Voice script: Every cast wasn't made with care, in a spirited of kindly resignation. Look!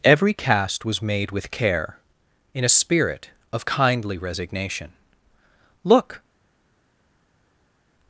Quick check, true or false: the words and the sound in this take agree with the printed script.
false